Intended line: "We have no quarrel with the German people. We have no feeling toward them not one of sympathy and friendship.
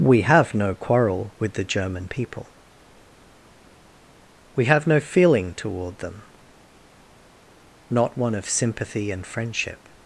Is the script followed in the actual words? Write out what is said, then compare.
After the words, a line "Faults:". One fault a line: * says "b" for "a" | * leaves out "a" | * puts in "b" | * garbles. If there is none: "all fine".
"We have no quarrel with the German people. We have no feeling toward them not one of sympathy and friendship.
Faults:
all fine